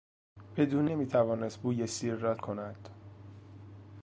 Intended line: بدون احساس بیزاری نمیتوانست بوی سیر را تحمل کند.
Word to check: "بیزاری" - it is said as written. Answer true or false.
false